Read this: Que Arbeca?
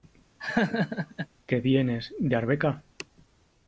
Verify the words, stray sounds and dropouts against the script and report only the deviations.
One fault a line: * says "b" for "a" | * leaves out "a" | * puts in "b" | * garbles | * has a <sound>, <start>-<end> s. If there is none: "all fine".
* has a laugh, 0.4-1.3 s
* puts in "vienes de"